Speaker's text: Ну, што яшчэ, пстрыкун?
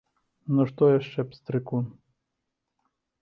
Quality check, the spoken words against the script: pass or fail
pass